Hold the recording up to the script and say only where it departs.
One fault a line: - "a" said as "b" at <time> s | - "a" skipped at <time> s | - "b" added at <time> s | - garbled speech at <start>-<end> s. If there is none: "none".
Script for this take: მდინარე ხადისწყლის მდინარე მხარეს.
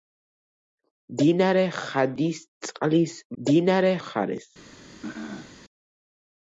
none